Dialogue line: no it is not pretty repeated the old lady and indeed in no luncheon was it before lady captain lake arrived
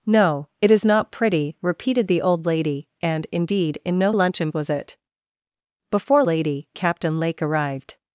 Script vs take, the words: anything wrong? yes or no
no